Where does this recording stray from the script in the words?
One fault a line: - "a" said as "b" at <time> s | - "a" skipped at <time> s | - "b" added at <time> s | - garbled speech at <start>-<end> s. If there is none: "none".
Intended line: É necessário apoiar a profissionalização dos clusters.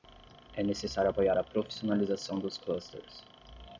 none